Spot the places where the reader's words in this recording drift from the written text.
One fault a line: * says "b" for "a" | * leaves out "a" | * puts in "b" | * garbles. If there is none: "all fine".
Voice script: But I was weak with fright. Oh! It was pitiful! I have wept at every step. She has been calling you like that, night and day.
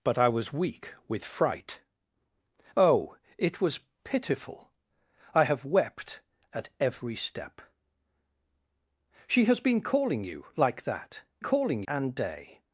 * says "calling" for "night"